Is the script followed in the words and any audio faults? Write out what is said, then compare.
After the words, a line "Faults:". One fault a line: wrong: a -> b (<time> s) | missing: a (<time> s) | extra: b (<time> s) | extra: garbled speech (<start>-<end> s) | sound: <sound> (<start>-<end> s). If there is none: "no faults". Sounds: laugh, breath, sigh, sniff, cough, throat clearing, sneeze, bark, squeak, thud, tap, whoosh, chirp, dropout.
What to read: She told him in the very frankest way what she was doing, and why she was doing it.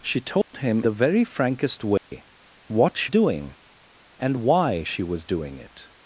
She told him the very frankest way what she doing, and why she was doing it.
Faults:
sound: dropout (0.4-0.5 s)
missing: in (0.8 s)
sound: dropout (2.0-2.1 s)
missing: was (3.1 s)